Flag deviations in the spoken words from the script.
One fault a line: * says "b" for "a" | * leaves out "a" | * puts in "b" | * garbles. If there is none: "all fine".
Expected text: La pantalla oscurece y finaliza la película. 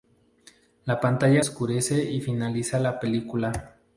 all fine